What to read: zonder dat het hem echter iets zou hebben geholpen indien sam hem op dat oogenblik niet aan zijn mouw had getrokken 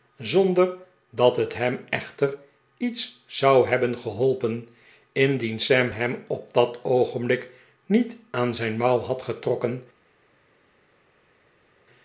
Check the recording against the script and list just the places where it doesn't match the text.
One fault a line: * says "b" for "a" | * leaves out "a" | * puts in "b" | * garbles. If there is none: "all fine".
all fine